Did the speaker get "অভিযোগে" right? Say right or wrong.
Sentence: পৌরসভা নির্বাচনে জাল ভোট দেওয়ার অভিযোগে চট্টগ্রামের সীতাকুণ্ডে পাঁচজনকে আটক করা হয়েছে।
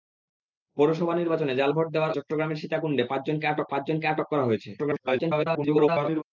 wrong